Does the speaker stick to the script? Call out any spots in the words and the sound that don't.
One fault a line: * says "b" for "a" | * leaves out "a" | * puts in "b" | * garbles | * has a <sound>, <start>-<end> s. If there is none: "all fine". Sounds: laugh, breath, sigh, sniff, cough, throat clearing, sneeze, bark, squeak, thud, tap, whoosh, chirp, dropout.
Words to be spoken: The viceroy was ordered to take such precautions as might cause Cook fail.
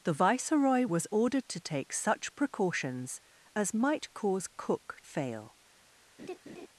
* has a laugh, 6.2-6.7 s